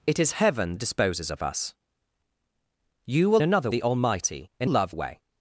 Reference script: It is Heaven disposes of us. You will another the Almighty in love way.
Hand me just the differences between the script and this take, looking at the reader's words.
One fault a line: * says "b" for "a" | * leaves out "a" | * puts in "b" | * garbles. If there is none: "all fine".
all fine